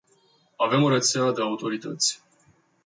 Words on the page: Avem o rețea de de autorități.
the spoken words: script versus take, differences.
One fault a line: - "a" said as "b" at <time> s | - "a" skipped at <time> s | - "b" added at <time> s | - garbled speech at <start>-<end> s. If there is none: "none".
none